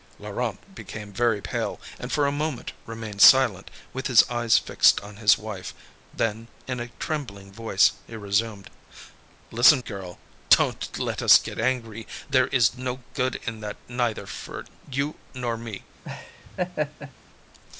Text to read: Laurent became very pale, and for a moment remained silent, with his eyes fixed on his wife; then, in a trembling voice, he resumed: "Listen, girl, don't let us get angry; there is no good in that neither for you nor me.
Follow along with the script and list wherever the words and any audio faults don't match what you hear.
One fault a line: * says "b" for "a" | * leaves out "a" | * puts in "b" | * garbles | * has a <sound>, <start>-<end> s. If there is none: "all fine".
* has a laugh, 16.0-17.1 s